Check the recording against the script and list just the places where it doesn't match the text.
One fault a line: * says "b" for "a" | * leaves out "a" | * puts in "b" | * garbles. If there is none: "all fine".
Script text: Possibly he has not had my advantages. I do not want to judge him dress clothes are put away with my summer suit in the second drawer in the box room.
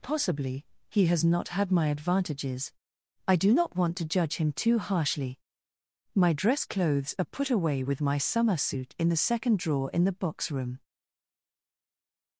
* puts in "too harshly My"